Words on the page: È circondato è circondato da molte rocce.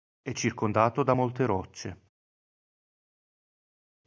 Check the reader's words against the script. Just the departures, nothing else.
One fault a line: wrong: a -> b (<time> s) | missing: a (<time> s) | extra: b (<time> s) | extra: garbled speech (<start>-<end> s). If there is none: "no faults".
missing: è circondato (1.0 s)